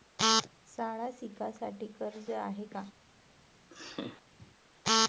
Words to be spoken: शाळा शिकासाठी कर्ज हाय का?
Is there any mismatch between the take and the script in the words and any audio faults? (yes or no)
yes